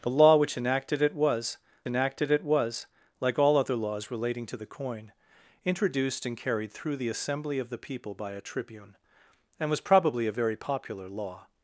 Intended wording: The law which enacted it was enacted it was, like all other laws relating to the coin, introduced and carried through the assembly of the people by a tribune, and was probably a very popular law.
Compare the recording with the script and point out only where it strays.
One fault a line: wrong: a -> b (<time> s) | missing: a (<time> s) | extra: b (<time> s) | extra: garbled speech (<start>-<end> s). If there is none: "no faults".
no faults